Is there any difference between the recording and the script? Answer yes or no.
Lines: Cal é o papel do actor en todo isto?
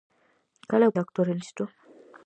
yes